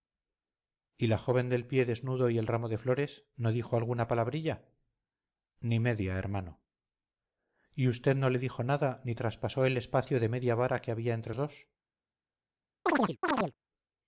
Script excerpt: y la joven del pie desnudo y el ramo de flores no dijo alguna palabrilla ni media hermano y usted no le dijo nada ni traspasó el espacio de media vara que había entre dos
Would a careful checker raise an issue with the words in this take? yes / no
no